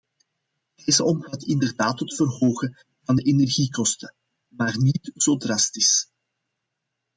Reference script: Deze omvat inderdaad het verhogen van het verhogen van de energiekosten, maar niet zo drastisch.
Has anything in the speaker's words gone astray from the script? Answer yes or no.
yes